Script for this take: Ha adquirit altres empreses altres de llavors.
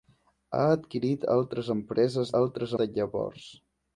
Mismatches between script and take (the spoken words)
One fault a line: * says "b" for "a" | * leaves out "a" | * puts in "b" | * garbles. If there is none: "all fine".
all fine